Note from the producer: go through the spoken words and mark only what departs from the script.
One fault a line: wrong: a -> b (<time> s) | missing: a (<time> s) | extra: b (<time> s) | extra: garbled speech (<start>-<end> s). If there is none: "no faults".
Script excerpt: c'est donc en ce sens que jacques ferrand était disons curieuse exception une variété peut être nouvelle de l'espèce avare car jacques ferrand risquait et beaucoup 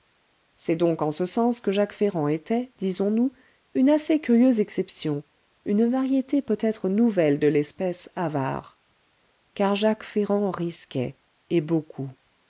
extra: nous une assez (3.1 s)